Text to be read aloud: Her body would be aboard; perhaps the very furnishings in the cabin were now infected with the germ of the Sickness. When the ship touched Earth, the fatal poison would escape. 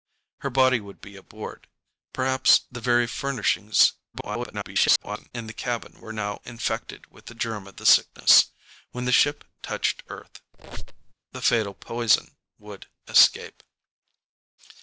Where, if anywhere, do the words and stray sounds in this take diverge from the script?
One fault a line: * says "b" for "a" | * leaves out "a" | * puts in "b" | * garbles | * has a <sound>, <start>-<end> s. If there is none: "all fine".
* garbles
* has a squeak, 10.5-11.1 s